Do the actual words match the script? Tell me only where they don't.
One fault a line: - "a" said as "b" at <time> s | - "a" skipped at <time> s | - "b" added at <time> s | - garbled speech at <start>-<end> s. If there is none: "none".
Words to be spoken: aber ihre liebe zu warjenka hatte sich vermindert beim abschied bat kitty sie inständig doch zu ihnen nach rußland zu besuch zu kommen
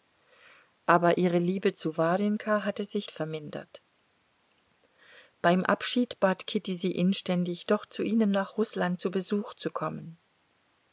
none